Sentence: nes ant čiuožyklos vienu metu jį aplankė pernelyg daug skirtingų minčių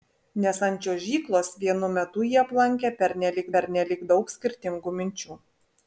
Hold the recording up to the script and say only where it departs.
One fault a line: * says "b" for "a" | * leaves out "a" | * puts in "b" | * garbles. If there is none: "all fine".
* puts in "pernelyg"